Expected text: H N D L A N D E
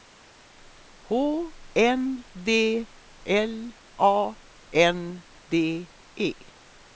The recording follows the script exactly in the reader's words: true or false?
true